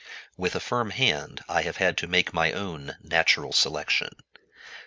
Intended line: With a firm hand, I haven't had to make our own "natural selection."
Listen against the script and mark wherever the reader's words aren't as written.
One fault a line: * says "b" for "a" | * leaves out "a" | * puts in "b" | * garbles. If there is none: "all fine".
* says "have" for "haven't"
* says "my" for "our"